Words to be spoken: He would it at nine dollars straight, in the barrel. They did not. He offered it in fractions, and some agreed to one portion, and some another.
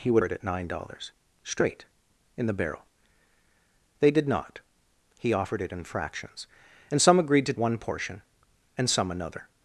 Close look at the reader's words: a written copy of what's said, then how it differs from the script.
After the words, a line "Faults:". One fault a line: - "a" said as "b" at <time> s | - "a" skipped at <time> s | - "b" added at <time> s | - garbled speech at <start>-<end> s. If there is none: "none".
He would it at nine dollars straight, in the barrel. They did not. He offered it in fractions, and some agreed to one portion, and some another.
Faults:
none